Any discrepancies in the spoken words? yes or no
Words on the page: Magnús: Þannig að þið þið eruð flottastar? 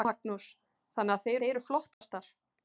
no